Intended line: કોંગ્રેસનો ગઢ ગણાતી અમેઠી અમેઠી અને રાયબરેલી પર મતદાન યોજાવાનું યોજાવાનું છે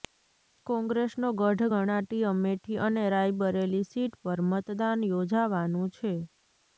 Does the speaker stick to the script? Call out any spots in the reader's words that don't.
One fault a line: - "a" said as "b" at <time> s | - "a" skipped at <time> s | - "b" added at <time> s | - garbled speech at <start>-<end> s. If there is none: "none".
- "અમેઠી" skipped at 2.8 s
- "સીટ" added at 3.9 s
- "યોજાવાનું" skipped at 5.9 s